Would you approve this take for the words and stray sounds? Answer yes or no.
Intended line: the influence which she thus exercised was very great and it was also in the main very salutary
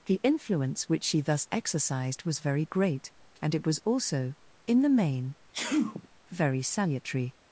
no